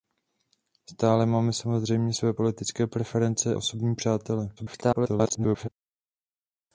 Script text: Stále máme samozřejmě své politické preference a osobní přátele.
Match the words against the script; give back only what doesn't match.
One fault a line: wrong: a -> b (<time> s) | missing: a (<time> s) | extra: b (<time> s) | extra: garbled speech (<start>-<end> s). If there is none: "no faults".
missing: a (3.6 s)
extra: garbled speech (4.6-5.7 s)